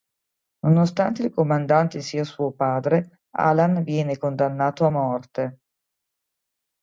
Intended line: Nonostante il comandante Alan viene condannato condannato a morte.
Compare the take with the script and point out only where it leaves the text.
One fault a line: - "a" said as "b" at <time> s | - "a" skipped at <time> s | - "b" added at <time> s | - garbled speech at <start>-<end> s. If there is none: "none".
- "sia suo padre" added at 2.0 s
- "condannato" skipped at 4.8 s